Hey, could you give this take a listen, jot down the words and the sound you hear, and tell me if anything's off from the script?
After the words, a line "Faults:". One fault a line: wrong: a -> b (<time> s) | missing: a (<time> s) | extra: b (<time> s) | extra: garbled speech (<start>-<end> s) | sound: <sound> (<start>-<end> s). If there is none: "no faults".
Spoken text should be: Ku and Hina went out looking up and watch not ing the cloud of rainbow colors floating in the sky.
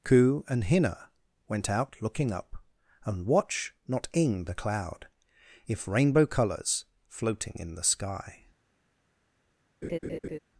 Ku and Hina went out looking up and watch not ing the cloud if rainbow colors floating in the sky.
Faults:
wrong: of -> if (5.7 s)
sound: laugh (9.8-10.4 s)